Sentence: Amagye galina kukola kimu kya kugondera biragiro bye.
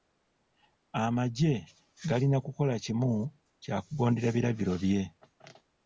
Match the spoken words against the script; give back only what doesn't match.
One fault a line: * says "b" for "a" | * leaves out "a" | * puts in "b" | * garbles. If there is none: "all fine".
all fine